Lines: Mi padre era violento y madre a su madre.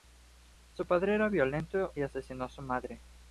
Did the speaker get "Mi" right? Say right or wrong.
wrong